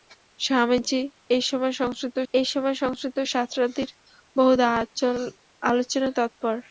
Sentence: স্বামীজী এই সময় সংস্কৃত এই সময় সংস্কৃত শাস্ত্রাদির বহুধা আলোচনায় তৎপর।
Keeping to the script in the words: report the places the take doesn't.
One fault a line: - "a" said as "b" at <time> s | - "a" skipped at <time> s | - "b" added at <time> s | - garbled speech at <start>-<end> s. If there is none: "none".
none